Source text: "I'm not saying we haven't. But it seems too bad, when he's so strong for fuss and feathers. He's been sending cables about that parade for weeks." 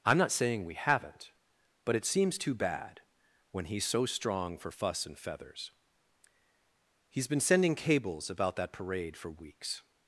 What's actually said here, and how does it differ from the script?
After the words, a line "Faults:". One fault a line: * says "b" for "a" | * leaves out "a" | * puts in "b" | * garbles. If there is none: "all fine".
"I'm not saying we haven't. But it seems too bad, when he's so strong for fuss and feathers. He's been sending cables about that parade for weeks."
Faults:
all fine